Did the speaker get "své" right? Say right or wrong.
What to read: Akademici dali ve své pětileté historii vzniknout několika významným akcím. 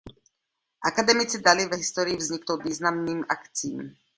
wrong